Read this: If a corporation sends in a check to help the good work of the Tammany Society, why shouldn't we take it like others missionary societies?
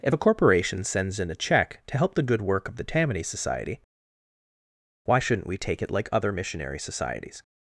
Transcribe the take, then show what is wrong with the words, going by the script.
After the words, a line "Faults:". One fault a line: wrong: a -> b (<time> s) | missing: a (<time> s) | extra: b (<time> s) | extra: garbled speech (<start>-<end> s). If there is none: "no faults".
If a corporation sends in a check to help the good work of the Tammany Society, why shouldn't we take it like other missionary societies?
Faults:
wrong: others -> other (6.1 s)